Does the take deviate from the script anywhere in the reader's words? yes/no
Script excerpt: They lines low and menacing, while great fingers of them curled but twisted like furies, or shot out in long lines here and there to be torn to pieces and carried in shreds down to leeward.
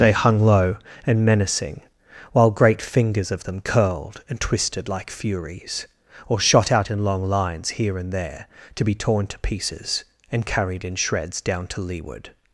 yes